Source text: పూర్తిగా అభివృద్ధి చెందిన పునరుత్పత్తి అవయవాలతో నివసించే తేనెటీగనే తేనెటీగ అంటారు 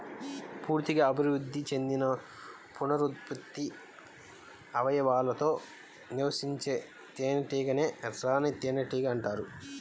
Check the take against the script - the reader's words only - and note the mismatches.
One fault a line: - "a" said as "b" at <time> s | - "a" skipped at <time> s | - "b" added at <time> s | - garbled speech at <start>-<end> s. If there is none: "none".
- "రాణి" added at 8.2 s